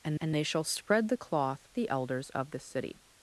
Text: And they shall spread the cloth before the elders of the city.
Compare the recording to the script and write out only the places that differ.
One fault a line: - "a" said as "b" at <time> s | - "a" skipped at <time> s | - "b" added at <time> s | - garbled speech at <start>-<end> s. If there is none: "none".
- "and" added at 0.2 s
- "before" skipped at 1.7 s